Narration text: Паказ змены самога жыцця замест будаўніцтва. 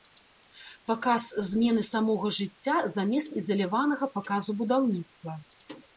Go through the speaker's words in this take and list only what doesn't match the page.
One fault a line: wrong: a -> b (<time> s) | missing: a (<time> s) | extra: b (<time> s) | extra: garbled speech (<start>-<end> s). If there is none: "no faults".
extra: ізаляванага паказу (3.4 s)